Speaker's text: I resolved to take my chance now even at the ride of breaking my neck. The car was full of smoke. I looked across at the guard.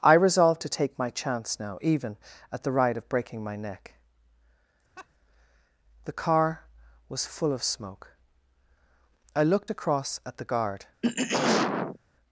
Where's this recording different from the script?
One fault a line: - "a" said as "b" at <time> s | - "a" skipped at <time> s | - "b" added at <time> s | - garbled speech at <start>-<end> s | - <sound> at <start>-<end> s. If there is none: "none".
- laugh at 5.0-5.1 s
- throat clearing at 11.0-12.0 s